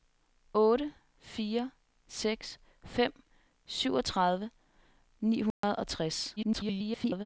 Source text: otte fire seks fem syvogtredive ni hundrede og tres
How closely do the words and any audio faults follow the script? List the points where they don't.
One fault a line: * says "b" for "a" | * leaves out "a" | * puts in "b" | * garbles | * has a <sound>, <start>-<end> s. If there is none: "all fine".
* has a dropout, 5.5-5.6 s
* garbles